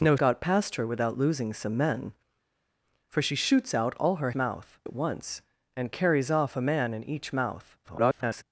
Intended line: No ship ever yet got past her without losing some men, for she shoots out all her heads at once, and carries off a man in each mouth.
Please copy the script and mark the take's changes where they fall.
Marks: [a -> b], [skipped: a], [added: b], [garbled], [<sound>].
No [skipped: ship ever yet] got past her without losing some men, for she shoots out all her [heads -> mouth] at once, and carries off a man in each mouth. [garbled]